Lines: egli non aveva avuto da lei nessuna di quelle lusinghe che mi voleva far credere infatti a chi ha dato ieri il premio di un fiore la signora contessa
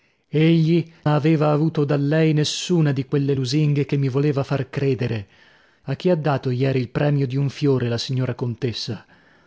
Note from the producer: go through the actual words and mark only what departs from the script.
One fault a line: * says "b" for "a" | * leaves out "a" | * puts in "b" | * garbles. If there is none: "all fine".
* leaves out "non"
* leaves out "infatti"